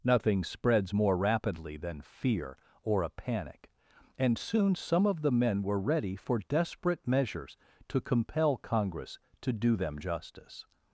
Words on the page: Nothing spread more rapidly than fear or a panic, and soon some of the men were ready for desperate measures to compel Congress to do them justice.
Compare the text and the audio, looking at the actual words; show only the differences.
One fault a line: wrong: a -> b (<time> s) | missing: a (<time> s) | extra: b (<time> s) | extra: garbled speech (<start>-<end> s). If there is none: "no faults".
wrong: spread -> spreads (0.4 s)